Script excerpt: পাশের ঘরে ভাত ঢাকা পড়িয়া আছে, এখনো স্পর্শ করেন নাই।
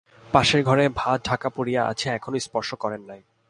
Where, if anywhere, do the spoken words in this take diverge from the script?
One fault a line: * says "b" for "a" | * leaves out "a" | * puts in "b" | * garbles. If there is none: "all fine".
all fine